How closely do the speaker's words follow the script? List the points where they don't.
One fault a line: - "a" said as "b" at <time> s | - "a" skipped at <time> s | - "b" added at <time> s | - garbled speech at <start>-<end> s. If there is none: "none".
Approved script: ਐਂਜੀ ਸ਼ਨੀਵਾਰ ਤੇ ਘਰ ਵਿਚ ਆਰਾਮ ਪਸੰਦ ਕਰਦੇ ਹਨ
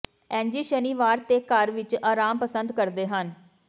none